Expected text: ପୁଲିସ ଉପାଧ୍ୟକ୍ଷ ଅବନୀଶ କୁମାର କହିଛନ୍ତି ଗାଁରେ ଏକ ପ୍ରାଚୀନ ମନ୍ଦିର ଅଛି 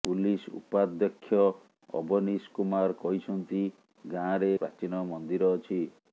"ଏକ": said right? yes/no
no